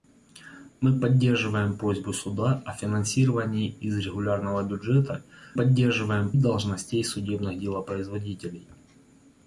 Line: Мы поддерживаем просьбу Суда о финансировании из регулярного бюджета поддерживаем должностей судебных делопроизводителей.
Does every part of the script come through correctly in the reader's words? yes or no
yes